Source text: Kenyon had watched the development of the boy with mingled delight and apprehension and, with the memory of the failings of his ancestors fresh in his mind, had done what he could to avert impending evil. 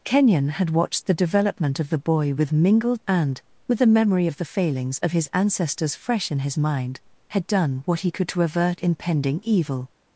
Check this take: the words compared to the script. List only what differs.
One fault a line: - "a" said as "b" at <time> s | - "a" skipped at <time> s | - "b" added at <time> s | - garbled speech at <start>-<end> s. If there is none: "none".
- "delight and apprehension" skipped at 3.0 s